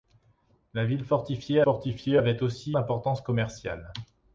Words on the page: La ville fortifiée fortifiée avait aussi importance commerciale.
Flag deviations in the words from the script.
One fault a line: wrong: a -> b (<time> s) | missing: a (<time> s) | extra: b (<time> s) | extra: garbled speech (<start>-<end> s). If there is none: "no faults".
no faults